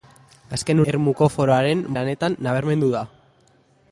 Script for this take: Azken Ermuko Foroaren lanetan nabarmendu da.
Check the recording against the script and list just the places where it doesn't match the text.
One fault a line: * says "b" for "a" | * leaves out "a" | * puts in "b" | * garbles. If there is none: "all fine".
all fine